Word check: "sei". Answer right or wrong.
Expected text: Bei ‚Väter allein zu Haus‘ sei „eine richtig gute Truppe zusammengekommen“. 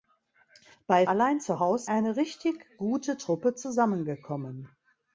wrong